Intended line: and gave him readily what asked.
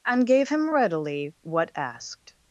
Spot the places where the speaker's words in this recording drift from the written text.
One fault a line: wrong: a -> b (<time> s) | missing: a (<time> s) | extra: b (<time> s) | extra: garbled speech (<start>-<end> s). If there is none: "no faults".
no faults